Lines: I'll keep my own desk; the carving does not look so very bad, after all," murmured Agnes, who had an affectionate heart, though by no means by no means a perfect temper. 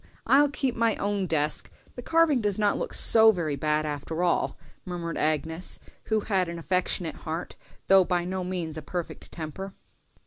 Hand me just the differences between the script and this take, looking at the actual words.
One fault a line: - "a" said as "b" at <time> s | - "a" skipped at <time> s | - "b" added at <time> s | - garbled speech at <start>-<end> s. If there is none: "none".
- "by no means" skipped at 8.8 s